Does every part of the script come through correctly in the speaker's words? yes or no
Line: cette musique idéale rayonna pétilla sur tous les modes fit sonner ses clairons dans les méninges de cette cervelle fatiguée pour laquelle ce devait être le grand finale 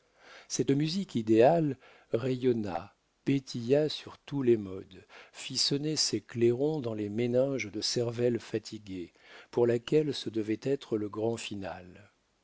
no